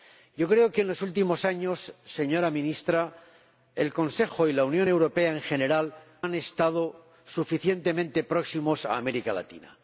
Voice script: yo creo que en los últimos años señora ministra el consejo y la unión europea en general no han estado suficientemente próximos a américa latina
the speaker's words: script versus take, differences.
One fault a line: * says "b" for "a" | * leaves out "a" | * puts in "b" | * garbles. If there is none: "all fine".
* leaves out "no"